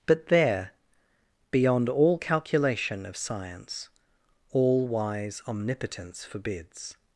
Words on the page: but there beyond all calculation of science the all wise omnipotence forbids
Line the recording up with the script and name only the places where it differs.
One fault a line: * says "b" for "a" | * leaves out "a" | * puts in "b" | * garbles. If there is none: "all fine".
* leaves out "the"